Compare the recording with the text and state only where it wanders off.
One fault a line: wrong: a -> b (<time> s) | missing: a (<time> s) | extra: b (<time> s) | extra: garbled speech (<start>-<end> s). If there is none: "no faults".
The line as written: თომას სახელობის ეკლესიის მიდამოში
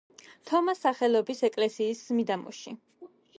no faults